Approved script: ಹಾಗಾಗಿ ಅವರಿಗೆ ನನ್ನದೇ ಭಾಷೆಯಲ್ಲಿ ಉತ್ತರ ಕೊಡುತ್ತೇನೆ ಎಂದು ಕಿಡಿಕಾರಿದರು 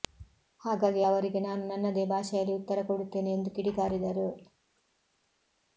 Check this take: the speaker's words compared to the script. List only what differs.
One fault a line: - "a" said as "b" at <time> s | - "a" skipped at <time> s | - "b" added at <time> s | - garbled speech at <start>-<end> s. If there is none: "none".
- "ನಾನು" added at 1.4 s